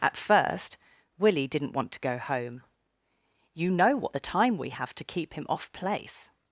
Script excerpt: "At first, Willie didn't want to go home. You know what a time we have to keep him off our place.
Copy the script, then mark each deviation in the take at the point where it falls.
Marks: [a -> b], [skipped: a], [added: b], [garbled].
"At first, Willie didn't want to go home. You know what [a -> the] time we have to keep him off [skipped: our] place.